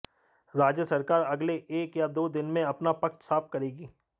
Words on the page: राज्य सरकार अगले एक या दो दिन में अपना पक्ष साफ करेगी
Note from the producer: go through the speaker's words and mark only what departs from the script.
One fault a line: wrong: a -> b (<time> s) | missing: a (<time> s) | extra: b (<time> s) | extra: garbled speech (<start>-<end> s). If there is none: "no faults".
no faults